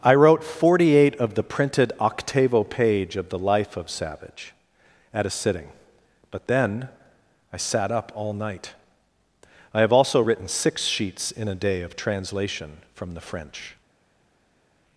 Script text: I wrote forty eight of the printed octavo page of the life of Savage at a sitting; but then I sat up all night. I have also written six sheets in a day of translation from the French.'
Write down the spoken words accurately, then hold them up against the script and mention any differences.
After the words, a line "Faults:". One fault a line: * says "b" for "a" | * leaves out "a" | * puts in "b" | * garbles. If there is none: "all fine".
I wrote forty eight of the printed octavo page of the life of Savage at a sitting; but then I sat up all night. I have also written six sheets in a day of translation from the French.'
Faults:
all fine